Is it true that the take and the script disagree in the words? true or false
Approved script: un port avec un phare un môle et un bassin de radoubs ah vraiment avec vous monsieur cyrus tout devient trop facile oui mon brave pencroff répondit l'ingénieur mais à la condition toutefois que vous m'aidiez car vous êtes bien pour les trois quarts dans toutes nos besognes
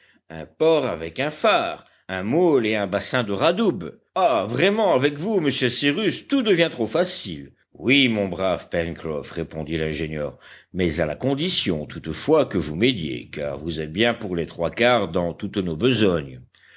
false